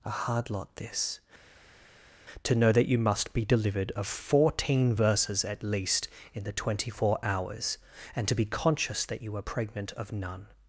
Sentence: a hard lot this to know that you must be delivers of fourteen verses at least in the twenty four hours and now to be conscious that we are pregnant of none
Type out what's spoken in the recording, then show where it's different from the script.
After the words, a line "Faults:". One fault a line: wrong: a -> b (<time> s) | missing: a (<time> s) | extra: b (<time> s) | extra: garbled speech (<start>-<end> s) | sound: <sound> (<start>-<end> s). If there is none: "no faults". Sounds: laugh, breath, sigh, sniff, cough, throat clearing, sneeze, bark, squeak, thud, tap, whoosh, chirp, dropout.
a hard lot this to know that you must be delivered of fourteen verses at least in the twenty four hours and to be conscious that you are pregnant of none
Faults:
wrong: delivers -> delivered (3.5 s)
missing: now (8.3 s)
wrong: we -> you (9.2 s)